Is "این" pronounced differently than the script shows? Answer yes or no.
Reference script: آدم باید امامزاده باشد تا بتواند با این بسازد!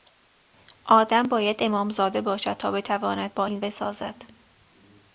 no